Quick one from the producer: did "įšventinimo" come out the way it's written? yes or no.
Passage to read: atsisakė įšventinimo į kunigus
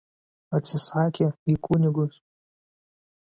no